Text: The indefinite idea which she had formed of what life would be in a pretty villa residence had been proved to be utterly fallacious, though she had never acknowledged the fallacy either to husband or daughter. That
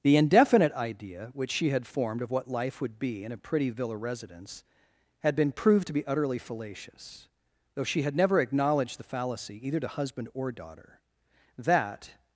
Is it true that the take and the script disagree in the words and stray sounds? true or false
false